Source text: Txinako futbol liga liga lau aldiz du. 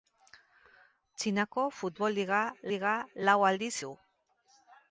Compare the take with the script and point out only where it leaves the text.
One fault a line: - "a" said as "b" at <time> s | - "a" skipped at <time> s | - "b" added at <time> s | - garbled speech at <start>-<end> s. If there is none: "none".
none